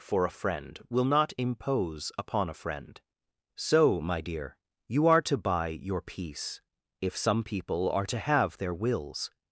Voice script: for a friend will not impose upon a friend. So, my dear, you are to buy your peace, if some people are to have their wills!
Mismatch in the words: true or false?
false